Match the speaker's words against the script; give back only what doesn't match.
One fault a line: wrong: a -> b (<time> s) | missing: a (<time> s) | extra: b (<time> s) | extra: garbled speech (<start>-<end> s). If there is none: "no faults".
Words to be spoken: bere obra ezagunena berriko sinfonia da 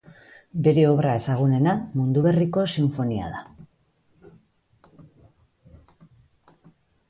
extra: mundu (2.0 s)